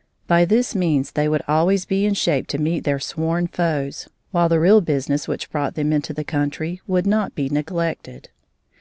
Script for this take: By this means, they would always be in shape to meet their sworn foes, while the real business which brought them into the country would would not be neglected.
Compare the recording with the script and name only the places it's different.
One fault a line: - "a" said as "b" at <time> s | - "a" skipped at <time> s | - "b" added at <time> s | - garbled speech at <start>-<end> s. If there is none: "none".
- "would" skipped at 7.1 s